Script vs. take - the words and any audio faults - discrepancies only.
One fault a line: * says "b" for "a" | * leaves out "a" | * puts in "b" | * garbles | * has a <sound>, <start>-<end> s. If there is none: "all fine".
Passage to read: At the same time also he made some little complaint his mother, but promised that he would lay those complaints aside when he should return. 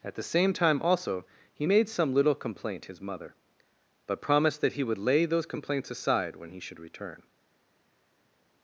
all fine